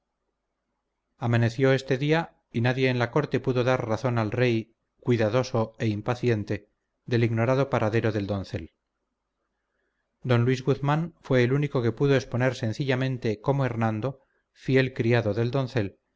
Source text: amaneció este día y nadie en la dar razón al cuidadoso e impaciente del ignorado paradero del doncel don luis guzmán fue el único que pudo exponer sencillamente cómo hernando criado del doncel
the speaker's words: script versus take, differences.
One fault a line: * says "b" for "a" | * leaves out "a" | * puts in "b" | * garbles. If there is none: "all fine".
* puts in "corte pudo"
* puts in "rey"
* puts in "fiel"